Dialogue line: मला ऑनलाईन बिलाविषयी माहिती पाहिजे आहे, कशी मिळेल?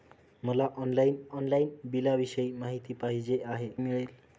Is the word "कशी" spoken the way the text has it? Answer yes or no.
no